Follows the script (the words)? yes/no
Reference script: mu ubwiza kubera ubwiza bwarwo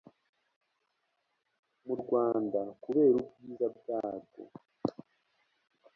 no